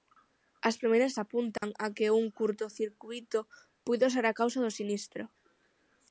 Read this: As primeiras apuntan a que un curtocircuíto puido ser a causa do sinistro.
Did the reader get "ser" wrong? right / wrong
right